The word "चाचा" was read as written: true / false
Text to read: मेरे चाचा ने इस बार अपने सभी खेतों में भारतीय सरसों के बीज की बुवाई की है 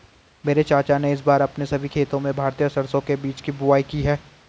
true